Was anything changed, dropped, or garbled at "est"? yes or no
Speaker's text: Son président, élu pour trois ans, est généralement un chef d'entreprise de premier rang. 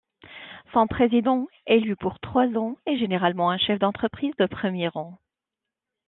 no